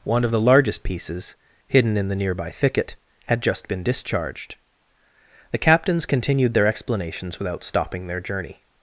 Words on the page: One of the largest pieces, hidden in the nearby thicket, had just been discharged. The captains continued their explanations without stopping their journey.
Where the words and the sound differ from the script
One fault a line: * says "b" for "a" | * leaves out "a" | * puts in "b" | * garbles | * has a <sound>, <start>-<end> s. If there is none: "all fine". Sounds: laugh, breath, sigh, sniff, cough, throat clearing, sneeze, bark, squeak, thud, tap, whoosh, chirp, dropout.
all fine